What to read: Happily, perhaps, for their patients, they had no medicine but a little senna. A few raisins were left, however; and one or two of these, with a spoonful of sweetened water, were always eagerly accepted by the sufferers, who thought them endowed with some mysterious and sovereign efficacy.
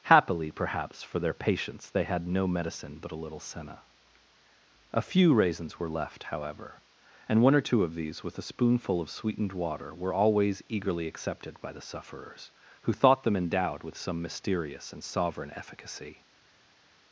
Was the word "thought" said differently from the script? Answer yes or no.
no